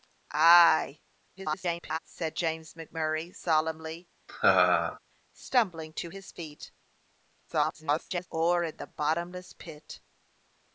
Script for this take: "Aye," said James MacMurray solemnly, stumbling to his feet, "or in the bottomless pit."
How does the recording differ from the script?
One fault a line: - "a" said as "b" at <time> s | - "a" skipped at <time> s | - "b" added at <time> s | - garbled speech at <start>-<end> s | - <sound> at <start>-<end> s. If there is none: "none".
- garbled speech at 1.4-2.0 s
- laugh at 4.3-5.0 s
- garbled speech at 7.5-8.3 s